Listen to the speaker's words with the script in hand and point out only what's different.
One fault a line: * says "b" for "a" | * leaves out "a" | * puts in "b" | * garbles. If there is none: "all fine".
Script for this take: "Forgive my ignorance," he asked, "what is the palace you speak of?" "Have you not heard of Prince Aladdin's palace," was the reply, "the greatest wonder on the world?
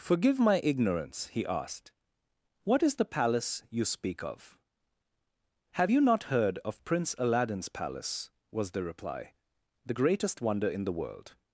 * says "in" for "on"